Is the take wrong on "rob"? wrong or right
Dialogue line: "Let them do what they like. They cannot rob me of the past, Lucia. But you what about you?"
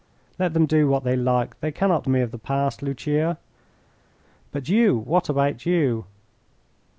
wrong